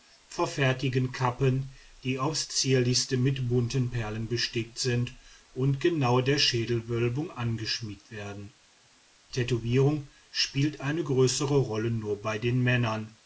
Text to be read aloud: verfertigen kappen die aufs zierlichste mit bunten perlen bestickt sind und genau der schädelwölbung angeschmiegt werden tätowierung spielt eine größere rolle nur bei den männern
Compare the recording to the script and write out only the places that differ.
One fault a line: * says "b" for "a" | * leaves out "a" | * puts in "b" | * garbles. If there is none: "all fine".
all fine